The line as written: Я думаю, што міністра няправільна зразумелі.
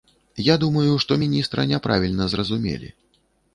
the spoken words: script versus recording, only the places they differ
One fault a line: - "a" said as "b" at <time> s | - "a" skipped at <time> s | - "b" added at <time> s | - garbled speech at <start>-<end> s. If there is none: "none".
none